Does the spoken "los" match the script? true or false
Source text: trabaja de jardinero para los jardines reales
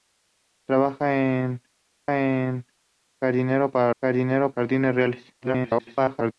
false